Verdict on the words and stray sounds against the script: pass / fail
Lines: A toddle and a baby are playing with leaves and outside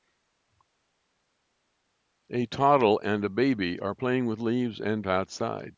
pass